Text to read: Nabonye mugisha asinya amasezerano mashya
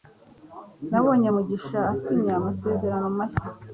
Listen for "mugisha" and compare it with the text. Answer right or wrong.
right